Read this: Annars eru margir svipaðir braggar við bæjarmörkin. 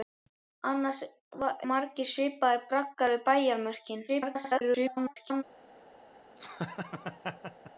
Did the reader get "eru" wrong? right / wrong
wrong